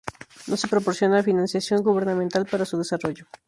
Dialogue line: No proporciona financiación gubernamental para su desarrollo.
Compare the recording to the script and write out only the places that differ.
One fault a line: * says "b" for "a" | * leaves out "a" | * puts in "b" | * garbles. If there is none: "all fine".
* puts in "se"